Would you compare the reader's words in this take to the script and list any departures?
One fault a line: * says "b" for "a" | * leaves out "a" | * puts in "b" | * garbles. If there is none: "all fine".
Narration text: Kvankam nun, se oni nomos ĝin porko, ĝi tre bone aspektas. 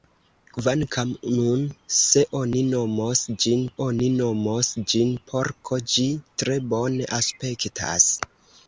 * puts in "oni nomos ĝin"